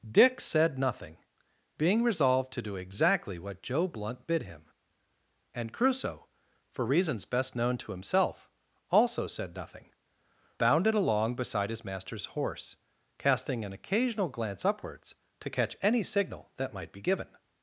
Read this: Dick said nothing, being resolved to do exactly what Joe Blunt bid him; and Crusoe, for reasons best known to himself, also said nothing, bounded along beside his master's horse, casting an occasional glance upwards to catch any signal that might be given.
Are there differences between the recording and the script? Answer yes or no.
no